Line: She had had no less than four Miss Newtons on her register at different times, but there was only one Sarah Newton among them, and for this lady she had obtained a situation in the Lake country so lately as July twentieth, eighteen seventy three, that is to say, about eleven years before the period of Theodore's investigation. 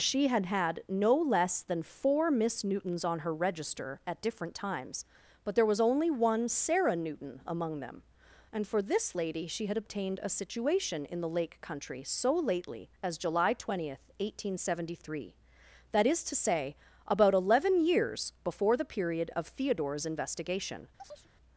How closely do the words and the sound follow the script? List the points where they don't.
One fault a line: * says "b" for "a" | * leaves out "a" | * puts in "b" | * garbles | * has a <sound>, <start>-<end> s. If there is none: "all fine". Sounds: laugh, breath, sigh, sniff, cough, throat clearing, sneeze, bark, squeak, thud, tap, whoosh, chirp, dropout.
* has a chirp, 21.0-21.3 s